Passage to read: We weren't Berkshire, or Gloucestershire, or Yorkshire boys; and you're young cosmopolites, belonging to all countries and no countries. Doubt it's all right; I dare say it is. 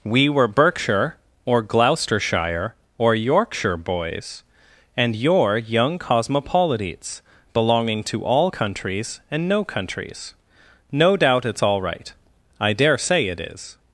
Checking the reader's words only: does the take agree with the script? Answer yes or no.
no